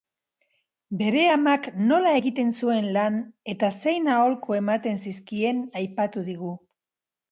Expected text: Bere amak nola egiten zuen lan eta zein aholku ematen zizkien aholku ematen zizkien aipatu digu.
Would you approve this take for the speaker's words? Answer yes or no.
no